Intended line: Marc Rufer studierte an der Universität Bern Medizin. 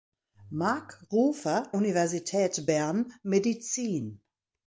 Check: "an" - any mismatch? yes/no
yes